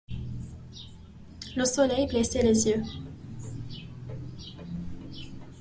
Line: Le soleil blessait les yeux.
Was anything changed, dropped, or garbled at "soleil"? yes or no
no